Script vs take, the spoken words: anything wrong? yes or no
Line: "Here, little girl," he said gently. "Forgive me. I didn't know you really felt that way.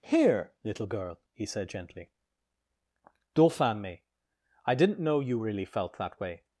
yes